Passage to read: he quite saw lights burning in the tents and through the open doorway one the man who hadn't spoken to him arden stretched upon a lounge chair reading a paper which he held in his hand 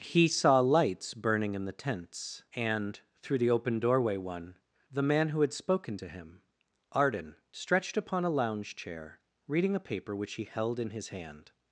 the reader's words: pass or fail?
fail